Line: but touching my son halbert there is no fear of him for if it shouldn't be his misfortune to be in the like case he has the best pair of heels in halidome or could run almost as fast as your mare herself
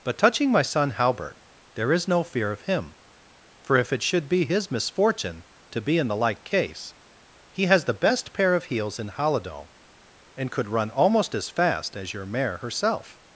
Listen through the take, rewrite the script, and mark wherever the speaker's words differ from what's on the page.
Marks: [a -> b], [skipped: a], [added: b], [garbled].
but touching my son halbert there is no fear of him for if it [shouldn't -> should] be his misfortune to be in the like case he has the best pair of heels in halidome [or -> and] could run almost as fast as your mare herself